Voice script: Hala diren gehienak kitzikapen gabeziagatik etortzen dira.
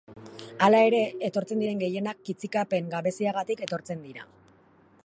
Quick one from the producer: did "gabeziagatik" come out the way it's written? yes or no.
yes